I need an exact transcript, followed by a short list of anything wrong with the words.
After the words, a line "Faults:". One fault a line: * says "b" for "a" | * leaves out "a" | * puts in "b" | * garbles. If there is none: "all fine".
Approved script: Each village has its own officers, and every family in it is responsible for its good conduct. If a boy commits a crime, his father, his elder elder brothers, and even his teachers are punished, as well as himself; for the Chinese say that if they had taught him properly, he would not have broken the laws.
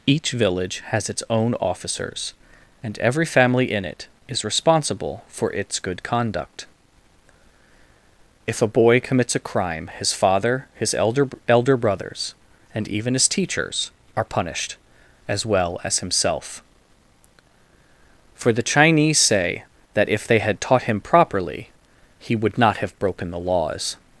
Each village has its own officers, and every family in it is responsible for its good conduct. If a boy commits a crime, his father, his elder elder brothers, and even his teachers are punished, as well as himself; for the Chinese say that if they had taught him properly, he would not have broken the laws.
Faults:
all fine